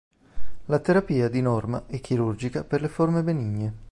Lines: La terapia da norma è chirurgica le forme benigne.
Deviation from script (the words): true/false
true